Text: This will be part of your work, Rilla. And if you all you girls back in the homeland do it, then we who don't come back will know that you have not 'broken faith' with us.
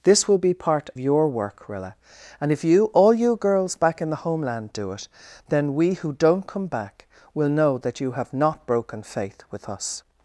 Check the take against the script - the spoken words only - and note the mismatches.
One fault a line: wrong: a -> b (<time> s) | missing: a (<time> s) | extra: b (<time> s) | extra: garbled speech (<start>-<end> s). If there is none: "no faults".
missing: of (0.9 s)